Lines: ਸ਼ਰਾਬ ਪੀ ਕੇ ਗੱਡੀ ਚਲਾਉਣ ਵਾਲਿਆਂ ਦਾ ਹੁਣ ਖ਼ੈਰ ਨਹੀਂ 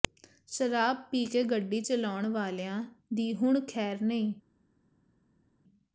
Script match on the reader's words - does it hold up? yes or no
no